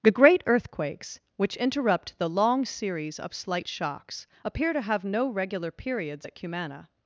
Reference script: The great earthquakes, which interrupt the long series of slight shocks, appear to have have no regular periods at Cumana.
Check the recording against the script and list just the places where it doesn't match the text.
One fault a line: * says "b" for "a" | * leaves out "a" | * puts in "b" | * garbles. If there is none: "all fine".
* leaves out "have"